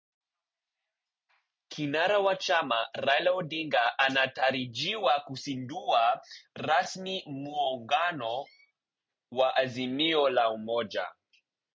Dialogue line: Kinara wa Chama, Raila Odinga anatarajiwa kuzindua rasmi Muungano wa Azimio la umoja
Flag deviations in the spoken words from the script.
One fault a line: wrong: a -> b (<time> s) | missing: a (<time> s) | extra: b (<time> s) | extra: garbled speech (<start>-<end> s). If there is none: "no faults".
no faults